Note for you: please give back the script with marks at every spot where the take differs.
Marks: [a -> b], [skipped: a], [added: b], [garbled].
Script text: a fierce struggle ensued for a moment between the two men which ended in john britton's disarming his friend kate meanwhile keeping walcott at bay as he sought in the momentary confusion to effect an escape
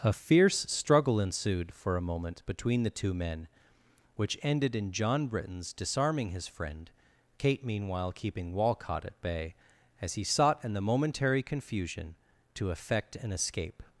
a fierce struggle ensued for a moment between the two men which ended in john britton's disarming his friend kate meanwhile keeping walcott at bay as he sought in the momentary confusion to effect an escape